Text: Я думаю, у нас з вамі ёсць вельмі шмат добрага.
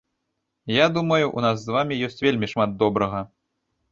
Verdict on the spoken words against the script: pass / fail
pass